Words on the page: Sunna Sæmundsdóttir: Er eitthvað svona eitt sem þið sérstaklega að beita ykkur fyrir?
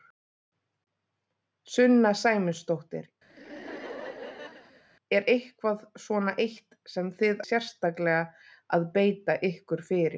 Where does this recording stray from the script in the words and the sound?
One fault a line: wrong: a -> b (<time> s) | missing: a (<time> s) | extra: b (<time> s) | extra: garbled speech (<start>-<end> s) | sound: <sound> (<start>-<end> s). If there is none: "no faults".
sound: laugh (3.3-4.8 s)